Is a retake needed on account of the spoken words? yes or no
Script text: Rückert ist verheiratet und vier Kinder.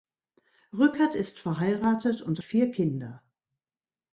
no